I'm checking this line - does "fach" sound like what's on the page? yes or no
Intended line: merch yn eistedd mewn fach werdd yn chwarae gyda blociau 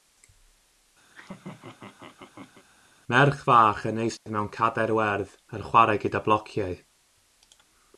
no